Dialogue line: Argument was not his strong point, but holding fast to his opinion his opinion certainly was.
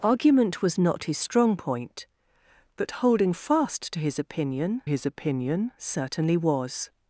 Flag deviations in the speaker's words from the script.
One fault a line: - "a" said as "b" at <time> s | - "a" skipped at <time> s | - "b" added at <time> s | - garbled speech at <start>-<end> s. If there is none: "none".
none